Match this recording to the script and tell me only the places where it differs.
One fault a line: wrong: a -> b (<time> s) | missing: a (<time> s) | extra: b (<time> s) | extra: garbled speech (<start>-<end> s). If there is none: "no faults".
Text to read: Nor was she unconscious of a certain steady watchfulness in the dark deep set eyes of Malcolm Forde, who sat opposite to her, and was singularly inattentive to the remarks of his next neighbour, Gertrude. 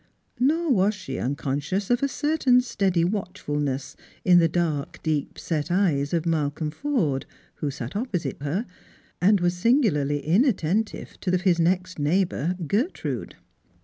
missing: to (8.4 s)
missing: the remarks (11.3 s)